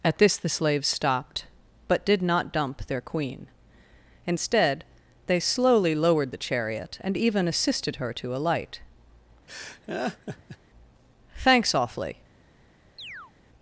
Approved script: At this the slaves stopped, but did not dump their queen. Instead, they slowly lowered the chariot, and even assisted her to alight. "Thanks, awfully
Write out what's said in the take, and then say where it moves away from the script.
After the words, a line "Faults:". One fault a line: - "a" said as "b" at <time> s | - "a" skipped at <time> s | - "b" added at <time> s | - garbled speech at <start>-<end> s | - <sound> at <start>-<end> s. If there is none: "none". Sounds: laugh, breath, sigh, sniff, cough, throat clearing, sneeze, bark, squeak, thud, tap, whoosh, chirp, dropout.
At this the slaves stopped, but did not dump their queen. Instead, they slowly lowered the chariot, and even assisted her to alight. "Thanks, awfully
Faults:
- laugh at 9.5-10.6 s
- chirp at 13.0-13.3 s